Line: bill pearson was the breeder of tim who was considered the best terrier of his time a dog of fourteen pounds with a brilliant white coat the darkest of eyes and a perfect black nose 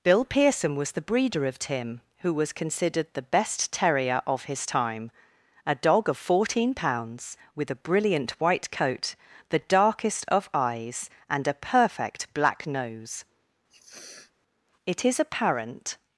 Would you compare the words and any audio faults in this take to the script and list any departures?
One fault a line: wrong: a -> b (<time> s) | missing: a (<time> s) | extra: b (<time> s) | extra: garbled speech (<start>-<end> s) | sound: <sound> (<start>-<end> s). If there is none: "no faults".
sound: sniff (13.7-14.3 s)
extra: it is apparent (14.8 s)